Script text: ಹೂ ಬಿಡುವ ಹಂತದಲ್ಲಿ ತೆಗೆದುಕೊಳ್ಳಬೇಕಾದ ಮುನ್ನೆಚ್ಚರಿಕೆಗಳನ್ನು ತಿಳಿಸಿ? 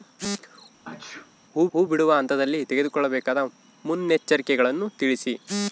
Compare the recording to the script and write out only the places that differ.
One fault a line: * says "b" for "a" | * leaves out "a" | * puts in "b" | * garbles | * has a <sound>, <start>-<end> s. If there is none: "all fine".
* has a sneeze, 0.8-1.3 s
* puts in "ಹೂ"